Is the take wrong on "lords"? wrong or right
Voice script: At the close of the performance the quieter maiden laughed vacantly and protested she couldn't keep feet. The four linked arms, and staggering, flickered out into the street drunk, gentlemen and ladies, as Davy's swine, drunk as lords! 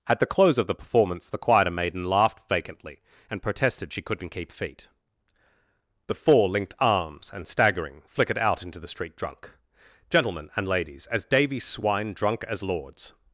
right